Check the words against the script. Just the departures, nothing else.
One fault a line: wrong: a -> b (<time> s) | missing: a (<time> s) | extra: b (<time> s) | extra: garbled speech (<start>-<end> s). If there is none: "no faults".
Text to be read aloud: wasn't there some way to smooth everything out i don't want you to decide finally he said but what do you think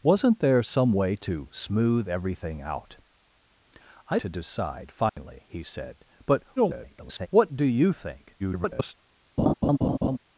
missing: don't want you (4.2 s)
extra: garbled speech (6.6-7.3 s)
extra: garbled speech (8.4-8.9 s)